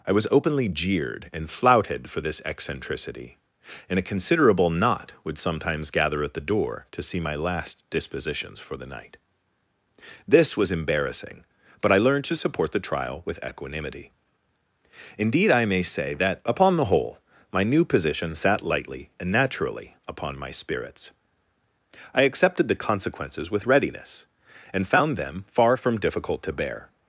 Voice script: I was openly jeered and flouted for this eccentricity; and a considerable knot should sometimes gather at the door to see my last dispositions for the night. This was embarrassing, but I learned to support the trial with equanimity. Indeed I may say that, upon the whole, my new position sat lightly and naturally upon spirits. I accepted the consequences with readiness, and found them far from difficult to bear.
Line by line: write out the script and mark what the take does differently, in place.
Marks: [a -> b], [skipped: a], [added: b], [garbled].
I was openly jeered and flouted for this eccentricity; and a considerable knot [should -> would] sometimes gather at the door to see my last dispositions for the night. This was embarrassing, but I learned to support the trial with equanimity. Indeed I may say that, upon the whole, my new position sat lightly and naturally upon [added: my] spirits. I accepted the consequences with readiness, and found them far from difficult to bear.